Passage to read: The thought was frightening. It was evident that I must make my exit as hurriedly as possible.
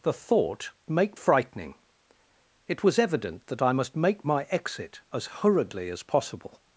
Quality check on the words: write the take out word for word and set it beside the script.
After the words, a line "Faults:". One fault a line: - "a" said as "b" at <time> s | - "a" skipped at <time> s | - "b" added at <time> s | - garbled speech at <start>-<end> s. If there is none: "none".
The thought make frightening. It was evident that I must make my exit as hurriedly as possible.
Faults:
- "was" said as "make" at 0.9 s